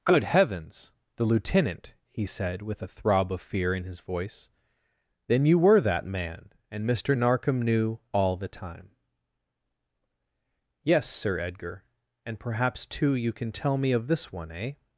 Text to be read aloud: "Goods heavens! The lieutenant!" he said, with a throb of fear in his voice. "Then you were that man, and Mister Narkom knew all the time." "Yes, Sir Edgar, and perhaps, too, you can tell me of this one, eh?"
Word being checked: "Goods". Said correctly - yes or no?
no